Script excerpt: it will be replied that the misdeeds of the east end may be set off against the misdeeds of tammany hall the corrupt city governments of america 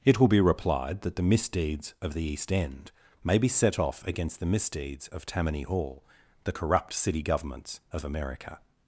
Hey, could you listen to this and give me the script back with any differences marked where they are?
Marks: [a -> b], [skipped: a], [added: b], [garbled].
it will be replied that the misdeeds of the east end may be set off against the misdeeds of tammany hall the corrupt city governments of america